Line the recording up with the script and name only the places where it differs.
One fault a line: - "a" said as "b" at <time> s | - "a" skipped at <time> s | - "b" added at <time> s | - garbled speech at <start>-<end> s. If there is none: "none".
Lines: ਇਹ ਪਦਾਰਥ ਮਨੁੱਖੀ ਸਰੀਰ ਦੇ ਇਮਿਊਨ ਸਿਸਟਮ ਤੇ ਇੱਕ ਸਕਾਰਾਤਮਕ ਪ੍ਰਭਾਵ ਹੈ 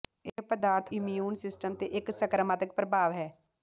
- "ਮਨੁੱਖੀ ਸਰੀਰ ਦੇ" skipped at 0.9 s